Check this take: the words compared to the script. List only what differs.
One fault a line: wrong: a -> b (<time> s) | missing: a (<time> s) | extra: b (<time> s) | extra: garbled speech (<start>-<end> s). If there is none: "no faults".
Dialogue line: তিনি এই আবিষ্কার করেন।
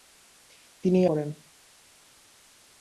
missing: আবিষ্কার (1.1 s)